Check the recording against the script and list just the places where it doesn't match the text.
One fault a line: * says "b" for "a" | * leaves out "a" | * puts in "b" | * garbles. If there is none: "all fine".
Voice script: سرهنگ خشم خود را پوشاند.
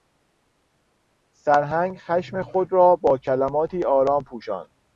* puts in "با کلماتی آرام"